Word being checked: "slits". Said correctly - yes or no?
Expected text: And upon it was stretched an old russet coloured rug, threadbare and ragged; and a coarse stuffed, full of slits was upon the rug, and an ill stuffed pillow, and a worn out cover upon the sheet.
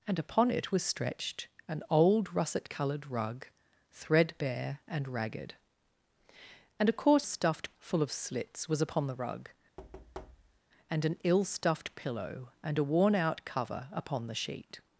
yes